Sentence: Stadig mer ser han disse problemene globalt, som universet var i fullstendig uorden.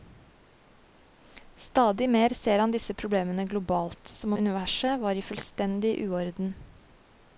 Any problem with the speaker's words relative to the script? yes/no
no